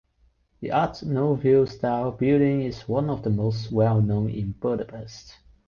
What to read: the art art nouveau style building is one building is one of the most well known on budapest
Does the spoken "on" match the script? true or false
false